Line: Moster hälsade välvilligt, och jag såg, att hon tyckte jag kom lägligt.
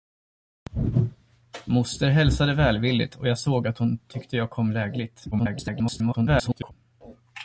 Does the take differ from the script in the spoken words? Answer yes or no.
yes